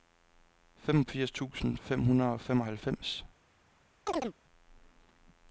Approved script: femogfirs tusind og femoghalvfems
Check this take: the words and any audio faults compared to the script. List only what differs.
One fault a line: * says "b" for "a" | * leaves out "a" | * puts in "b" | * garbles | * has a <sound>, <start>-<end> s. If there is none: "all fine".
* puts in "fem hundrede"
* has a chirp, 4.1-4.3 s